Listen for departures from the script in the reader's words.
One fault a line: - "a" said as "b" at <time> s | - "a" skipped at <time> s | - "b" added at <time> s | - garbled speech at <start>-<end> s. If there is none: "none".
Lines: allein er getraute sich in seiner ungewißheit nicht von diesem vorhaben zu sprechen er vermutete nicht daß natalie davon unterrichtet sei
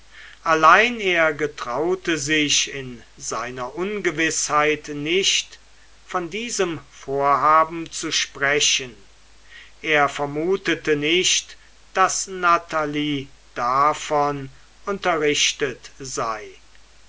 none